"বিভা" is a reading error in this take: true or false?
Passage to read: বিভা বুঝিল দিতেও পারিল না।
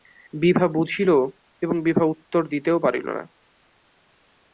false